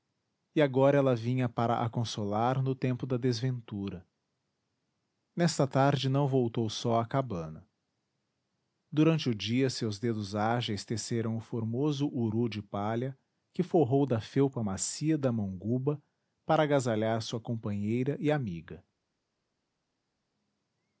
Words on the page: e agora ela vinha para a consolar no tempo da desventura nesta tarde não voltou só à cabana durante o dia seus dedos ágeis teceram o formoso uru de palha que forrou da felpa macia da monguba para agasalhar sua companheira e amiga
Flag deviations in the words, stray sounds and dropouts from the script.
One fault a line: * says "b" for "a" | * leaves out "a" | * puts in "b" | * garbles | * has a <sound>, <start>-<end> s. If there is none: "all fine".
all fine